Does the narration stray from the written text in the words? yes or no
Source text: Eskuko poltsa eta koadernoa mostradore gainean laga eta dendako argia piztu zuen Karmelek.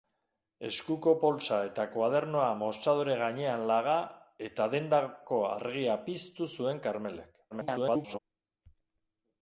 yes